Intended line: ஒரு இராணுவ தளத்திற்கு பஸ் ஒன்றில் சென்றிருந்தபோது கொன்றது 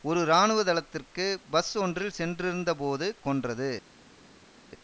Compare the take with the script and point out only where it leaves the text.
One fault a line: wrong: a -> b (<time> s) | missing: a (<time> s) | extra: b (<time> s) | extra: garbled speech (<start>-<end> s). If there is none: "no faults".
no faults